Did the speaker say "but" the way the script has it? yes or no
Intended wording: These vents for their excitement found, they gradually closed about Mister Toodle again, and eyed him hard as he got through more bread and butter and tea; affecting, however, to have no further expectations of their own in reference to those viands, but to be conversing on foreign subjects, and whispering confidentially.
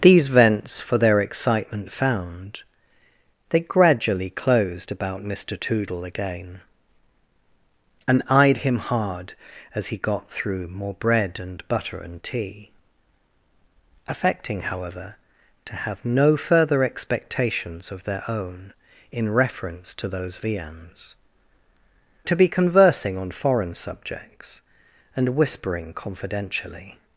no